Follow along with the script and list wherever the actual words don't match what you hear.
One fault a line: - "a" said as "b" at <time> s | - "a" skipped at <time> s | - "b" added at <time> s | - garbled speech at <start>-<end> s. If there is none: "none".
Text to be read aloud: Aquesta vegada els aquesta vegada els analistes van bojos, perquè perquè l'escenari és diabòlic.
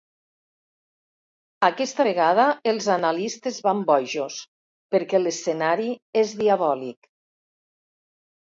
- "aquesta vegada els" skipped at 2.9 s
- "perquè" skipped at 5.2 s